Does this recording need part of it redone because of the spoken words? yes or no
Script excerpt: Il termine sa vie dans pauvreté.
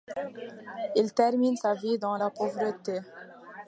yes